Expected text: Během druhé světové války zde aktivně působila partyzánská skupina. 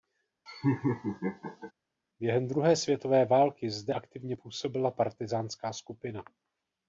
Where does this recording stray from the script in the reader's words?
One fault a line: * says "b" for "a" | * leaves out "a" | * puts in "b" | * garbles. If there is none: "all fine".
all fine